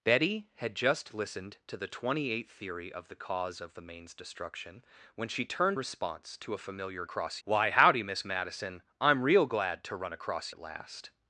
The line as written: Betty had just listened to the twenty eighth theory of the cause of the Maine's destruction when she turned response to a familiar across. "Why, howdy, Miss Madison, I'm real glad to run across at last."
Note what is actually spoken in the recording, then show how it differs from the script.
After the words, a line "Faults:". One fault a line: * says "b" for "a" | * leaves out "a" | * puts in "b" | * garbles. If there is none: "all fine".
Betty had just listened to the twenty eighth theory of the cause of the Maine's destruction when she turned response to a familiar across. "Why, howdy, Miss Madison, I'm real glad to run across at last."
Faults:
all fine